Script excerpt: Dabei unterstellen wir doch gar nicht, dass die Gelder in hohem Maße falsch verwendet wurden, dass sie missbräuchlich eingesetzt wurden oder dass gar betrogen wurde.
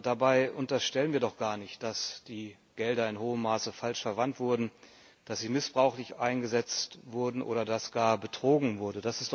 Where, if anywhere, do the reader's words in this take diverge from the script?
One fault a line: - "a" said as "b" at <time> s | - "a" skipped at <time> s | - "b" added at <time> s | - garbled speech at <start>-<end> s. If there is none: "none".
none